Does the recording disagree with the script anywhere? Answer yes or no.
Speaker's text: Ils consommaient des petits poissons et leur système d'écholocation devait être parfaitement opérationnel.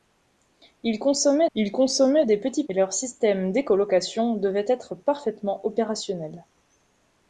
yes